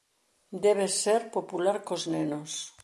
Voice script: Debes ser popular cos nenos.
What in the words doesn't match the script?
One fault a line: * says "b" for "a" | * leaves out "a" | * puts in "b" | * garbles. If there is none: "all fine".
all fine